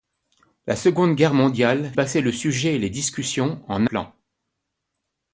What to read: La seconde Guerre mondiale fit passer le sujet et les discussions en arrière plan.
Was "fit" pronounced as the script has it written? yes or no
no